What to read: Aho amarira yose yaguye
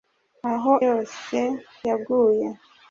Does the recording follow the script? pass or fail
fail